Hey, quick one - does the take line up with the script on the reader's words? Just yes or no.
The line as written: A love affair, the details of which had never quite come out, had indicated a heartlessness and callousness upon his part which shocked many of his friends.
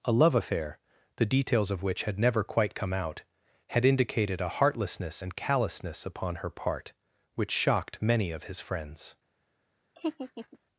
no